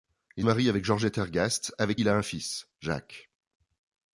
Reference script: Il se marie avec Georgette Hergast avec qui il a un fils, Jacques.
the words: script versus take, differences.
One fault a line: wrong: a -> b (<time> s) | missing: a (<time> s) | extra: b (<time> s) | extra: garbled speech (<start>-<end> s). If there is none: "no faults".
missing: se (0.5 s)
missing: qui (2.0 s)